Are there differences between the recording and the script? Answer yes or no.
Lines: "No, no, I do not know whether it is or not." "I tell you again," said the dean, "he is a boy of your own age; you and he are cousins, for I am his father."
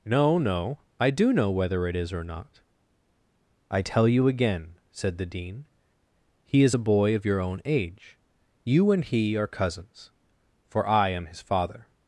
yes